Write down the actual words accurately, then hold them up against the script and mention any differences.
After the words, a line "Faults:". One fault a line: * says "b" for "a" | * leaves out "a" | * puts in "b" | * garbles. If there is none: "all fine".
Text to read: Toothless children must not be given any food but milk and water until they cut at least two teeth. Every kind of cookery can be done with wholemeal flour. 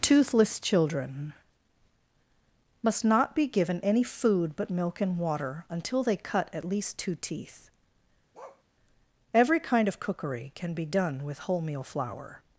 Toothless children must not be given any food but milk and water until they cut at least two teeth. Every kind of cookery can be done with wholemeal flour.
Faults:
all fine